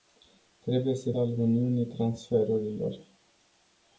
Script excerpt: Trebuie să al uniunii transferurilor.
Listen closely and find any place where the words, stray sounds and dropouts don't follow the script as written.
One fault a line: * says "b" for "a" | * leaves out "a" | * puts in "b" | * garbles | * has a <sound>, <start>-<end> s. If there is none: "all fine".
all fine